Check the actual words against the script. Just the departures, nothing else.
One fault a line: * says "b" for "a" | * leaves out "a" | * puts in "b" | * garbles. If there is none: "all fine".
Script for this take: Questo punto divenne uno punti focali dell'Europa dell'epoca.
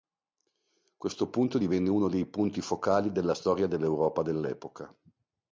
* puts in "dei"
* puts in "della storia"